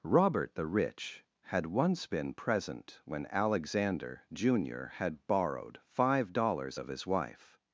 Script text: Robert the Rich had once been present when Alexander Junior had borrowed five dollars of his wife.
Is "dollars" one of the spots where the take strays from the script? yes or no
no